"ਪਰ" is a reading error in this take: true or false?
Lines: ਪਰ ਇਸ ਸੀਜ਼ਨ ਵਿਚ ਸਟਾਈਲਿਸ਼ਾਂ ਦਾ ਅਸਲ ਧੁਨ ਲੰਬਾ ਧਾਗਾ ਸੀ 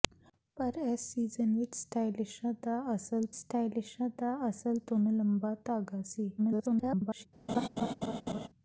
false